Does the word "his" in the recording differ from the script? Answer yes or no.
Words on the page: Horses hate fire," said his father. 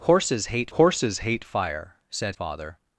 yes